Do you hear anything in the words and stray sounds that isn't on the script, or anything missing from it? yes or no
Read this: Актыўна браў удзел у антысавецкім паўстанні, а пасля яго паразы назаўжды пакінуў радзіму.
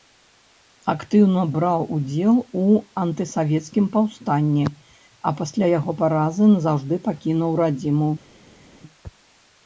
no